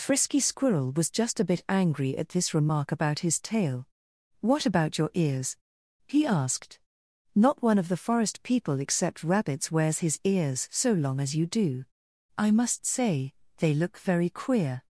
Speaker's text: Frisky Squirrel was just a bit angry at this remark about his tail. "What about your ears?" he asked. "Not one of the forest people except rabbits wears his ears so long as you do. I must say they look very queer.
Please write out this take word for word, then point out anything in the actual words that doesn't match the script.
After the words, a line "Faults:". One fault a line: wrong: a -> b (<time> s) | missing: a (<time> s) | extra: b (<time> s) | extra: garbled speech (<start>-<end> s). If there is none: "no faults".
Frisky Squirrel was just a bit angry at this remark about his tail. "What about your ears?" he asked. "Not one of the forest people except rabbits wears his ears so long as you do. I must say they look very queer.
Faults:
no faults